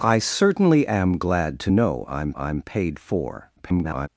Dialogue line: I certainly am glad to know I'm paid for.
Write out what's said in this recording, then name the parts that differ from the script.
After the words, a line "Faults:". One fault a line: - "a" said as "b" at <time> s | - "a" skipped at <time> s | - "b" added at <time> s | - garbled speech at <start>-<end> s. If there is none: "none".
I certainly am glad to know I'm I'm paid for. [garbled]
Faults:
- "I'm" added at 2.4 s
- garbled speech at 3.6-4.1 s